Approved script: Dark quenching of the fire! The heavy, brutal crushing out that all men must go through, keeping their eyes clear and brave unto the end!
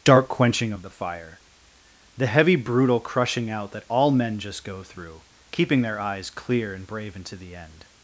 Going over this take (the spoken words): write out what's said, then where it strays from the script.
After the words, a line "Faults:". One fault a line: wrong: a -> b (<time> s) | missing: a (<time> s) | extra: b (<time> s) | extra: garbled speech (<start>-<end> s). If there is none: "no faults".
Dark quenching of the fire! The heavy, brutal crushing out that all men just go through, keeping their eyes clear and brave into the end!
Faults:
wrong: must -> just (4.4 s)
wrong: unto -> into (7.2 s)